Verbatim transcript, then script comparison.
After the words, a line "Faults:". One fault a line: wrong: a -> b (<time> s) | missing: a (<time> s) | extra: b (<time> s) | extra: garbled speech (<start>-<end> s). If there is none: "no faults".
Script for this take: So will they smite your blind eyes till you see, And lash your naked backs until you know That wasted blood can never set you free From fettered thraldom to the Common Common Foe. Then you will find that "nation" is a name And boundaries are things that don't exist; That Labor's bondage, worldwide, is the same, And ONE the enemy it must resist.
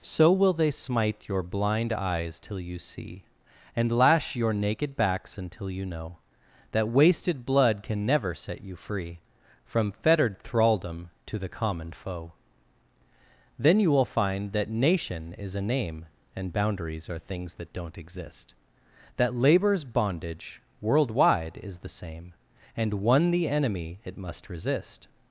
So will they smite your blind eyes till you see, And lash your naked backs until you know That wasted blood can never set you free From fettered thraldom to the Common Foe. Then you will find that "nation" is a name And boundaries are things that don't exist; That Labor's bondage, worldwide, is the same, And ONE the enemy it must resist.
Faults:
missing: Common (11.9 s)